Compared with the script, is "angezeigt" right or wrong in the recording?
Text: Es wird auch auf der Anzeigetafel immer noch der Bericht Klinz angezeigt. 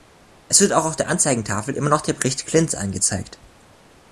right